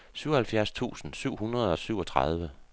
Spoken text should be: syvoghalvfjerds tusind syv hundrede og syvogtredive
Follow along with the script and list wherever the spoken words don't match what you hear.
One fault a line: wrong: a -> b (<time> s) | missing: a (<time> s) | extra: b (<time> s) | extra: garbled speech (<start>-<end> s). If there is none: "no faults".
no faults